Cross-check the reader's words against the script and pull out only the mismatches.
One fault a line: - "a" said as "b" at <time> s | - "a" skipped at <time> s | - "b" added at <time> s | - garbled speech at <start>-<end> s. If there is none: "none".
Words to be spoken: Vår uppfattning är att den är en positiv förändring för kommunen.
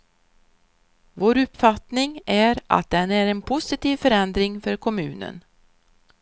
none